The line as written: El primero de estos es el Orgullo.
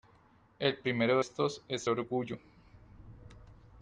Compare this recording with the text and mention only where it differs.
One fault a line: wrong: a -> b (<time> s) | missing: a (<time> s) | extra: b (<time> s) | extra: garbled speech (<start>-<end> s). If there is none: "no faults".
missing: de (1.2 s)
missing: el (1.9 s)